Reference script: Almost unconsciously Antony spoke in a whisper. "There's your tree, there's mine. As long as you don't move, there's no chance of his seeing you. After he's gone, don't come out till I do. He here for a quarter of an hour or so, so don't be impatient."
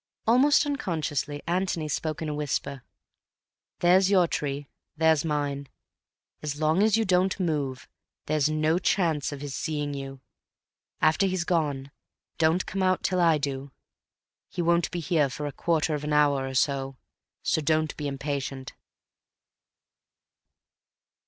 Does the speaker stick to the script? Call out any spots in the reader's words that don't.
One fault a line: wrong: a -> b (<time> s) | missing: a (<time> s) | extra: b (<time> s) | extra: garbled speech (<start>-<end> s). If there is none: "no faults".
extra: won't be (14.6 s)